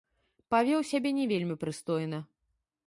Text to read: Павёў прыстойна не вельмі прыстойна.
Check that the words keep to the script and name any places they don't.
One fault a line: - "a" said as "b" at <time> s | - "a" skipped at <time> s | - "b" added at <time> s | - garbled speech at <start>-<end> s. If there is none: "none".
- "прыстойна" said as "сябе" at 0.9 s